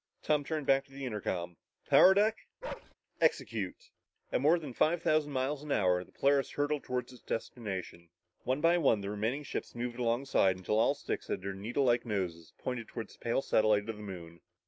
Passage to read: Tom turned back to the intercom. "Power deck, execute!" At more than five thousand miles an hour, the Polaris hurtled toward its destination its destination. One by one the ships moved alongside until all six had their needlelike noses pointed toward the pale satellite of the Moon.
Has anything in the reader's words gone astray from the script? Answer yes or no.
yes